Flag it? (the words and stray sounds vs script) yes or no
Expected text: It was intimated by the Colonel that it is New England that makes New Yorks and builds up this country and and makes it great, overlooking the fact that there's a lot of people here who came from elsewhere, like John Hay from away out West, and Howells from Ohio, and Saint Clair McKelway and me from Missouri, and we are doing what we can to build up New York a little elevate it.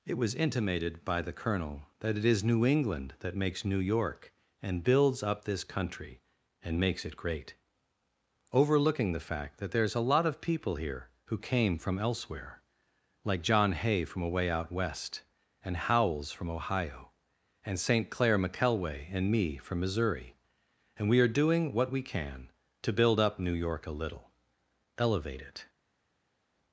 yes